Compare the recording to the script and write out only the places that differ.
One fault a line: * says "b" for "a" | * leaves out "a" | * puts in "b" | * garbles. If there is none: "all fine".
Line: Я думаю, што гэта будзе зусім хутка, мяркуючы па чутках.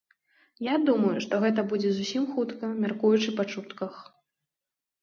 all fine